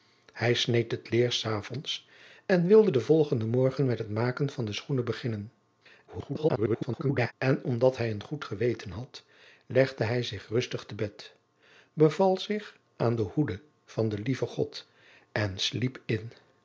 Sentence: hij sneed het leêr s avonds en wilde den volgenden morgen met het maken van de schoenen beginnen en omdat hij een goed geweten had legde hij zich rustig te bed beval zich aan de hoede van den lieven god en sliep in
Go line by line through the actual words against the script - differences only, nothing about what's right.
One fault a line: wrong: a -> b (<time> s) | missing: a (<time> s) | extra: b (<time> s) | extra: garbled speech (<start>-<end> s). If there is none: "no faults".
extra: garbled speech (6.1-7.3 s)